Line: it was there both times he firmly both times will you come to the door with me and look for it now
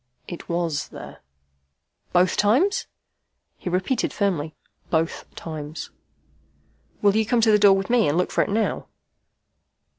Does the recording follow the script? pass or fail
fail